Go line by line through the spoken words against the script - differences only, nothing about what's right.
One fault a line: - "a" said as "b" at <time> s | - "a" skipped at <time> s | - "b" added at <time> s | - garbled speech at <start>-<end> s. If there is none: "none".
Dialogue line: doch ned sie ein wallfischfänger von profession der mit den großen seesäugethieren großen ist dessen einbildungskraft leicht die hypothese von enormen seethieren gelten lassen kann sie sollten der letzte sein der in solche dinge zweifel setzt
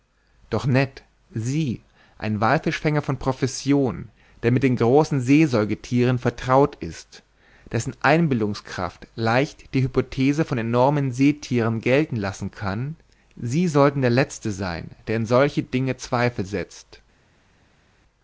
- "großen" said as "vertraut" at 6.2 s